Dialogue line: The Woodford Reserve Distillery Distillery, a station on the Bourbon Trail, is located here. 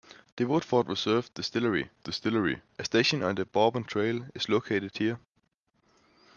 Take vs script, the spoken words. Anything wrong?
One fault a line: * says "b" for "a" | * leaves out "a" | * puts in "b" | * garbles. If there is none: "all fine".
all fine